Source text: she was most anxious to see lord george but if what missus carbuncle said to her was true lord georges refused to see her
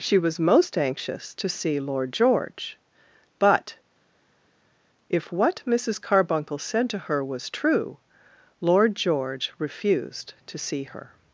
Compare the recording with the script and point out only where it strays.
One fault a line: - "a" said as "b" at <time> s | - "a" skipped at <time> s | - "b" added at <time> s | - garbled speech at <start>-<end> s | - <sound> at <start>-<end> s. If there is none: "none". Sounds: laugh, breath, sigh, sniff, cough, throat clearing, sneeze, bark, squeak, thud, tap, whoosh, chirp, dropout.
- "georges" said as "george" at 8.9 s